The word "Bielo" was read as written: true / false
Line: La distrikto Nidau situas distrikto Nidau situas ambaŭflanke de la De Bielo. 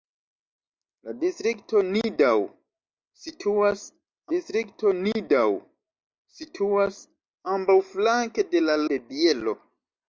true